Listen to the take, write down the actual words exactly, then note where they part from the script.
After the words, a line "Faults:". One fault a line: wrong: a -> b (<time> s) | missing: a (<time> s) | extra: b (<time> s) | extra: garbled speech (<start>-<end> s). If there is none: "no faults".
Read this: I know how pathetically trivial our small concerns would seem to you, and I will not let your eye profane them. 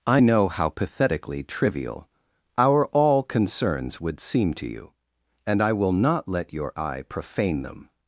I know how pathetically trivial our all concerns would seem to you, and I will not let your eye profane them.
Faults:
wrong: small -> all (2.9 s)